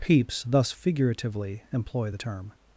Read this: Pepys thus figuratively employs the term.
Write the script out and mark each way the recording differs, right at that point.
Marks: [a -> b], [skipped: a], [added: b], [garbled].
Pepys thus figuratively [employs -> employ] the term.